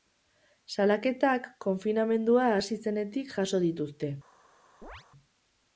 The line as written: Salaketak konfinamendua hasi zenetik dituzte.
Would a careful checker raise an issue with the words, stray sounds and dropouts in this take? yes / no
yes